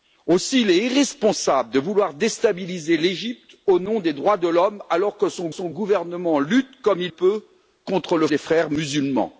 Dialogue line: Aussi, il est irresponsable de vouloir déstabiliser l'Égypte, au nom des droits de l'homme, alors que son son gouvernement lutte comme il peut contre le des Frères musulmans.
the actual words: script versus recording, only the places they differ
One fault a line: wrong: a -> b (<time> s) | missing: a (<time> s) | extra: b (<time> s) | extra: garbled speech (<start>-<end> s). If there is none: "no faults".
no faults